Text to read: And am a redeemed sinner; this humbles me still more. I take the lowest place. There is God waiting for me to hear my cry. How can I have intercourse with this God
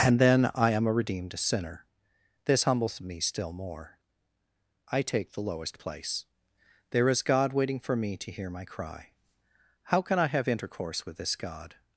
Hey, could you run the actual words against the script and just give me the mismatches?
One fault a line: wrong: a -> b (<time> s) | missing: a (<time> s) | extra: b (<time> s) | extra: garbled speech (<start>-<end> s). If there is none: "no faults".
extra: then I (0.2 s)